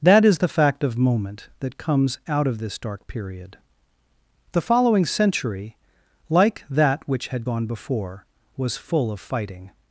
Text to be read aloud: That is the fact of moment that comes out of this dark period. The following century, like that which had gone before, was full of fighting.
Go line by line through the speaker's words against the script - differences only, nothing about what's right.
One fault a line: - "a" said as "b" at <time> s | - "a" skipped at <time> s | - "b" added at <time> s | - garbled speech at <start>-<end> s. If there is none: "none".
none